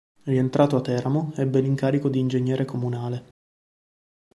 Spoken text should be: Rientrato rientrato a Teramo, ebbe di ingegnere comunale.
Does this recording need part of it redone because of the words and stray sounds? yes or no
yes